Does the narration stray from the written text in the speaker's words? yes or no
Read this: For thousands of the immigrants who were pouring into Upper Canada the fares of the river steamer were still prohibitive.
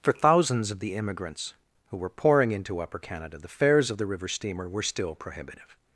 no